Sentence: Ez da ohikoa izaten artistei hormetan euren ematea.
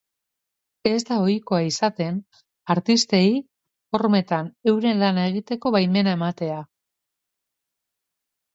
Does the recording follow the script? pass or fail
fail